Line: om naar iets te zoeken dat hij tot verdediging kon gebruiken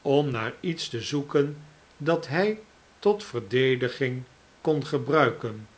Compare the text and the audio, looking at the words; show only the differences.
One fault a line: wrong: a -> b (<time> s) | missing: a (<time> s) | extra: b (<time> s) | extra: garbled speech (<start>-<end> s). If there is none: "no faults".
no faults